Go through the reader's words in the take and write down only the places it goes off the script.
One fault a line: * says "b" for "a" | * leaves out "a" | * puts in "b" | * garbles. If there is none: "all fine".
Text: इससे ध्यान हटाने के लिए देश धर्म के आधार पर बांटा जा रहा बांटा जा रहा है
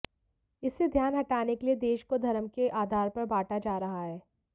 * puts in "को"
* leaves out "बांटा जा रहा"